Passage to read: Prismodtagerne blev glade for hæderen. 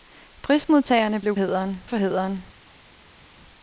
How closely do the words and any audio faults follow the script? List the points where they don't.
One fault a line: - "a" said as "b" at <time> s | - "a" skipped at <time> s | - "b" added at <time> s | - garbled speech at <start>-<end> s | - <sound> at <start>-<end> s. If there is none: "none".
- "glade" said as "hæderen" at 1.3 s